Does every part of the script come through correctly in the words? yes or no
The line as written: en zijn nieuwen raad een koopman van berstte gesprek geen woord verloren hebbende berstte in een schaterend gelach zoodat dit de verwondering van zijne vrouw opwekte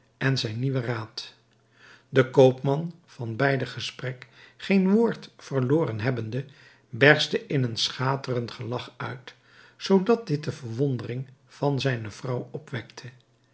no